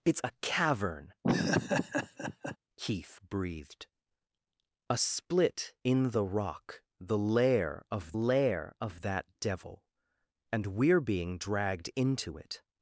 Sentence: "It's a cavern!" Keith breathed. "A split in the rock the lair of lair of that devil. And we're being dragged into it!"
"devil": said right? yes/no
yes